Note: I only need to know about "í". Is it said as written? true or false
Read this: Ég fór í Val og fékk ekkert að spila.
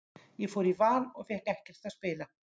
true